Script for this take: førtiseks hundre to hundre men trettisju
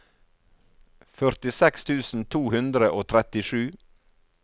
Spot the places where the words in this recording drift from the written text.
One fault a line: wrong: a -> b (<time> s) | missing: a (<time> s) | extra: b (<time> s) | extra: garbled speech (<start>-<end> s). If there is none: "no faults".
wrong: hundre -> tusen (1.9 s)
wrong: men -> og (3.0 s)